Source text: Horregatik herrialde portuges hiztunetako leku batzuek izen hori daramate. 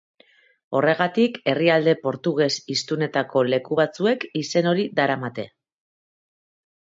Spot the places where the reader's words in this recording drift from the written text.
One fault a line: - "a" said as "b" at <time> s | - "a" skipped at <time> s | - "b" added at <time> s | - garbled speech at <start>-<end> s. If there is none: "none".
none